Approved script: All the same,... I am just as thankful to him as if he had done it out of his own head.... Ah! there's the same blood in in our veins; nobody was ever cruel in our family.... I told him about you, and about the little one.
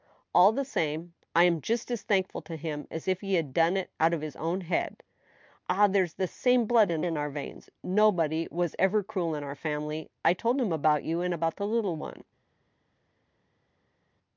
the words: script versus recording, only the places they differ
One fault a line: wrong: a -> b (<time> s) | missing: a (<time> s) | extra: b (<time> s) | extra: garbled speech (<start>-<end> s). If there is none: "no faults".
no faults